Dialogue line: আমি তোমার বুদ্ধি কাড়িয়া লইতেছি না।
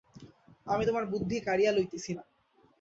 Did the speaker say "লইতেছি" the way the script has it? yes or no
yes